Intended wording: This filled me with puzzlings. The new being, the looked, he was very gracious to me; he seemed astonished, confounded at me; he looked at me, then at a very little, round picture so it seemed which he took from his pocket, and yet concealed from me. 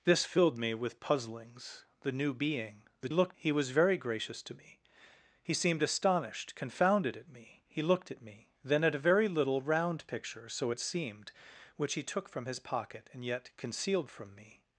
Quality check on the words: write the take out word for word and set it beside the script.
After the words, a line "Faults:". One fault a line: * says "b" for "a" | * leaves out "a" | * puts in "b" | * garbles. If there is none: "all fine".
This filled me with puzzlings. The new being, the looked, he was very gracious to me; he seemed astonished, confounded at me; he looked at me, then at a very little, round picture so it seemed which he took from his pocket, and yet concealed from me.
Faults:
all fine